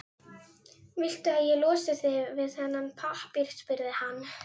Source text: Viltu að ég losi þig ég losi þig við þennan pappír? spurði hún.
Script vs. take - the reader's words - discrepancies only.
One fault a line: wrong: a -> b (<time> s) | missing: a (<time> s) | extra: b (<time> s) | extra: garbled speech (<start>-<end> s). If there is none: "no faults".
missing: ég losi þig (2.2 s)
wrong: hún -> hann (4.0 s)